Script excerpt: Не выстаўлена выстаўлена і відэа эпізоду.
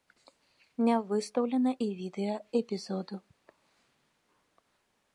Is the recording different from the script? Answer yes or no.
yes